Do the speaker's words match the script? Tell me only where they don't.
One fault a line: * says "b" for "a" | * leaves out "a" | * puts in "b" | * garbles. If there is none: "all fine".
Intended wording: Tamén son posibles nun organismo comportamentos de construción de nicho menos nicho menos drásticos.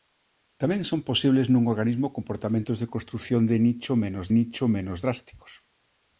all fine